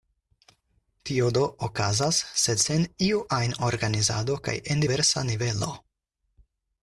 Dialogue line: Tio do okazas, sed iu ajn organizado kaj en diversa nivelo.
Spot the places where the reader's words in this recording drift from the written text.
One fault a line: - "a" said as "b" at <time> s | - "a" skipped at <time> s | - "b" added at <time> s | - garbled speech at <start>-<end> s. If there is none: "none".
- "sen" added at 2.6 s